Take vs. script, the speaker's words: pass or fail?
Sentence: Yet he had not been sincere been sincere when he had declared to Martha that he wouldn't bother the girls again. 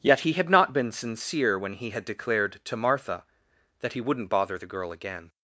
fail